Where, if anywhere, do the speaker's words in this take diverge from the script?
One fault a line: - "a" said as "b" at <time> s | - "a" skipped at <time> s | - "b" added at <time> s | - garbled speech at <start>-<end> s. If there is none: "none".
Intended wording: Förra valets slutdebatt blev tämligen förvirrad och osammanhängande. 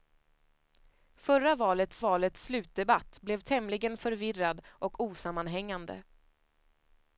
- "valets" added at 2.0 s